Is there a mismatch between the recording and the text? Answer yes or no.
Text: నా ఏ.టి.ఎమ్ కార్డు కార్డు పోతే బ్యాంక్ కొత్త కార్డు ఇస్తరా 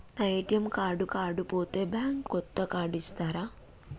no